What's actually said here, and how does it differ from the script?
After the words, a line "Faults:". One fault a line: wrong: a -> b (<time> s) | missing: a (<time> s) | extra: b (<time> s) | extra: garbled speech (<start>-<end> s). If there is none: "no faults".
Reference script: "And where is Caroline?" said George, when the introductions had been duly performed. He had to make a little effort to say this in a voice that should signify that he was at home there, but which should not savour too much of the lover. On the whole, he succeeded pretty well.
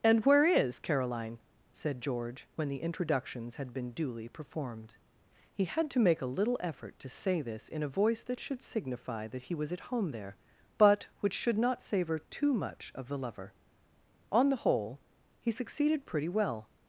"And where is Caroline?" said George, when the introductions had been duly performed. He had to make a little effort to say this in a voice that should signify that he was at home there, but which should not savour too much of the lover. On the whole, he succeeded pretty well.
Faults:
no faults